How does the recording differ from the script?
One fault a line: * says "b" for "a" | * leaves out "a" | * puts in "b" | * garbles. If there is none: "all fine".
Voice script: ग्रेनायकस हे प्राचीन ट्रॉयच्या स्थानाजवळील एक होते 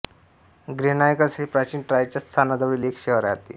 * puts in "शहर"